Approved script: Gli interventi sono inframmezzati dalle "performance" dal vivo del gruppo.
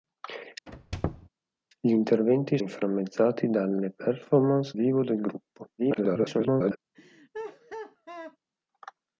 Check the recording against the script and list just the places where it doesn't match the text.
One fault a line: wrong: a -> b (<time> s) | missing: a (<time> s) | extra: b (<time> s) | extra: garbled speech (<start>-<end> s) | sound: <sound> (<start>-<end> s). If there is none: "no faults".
sound: squeak (0.7-1.3 s)
missing: sono (2.6 s)
missing: dal (4.7 s)
extra: garbled speech (5.8-6.8 s)
sound: laugh (6.9-8.4 s)